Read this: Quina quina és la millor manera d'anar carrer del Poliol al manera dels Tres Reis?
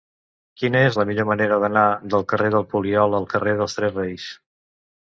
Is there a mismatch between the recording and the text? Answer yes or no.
yes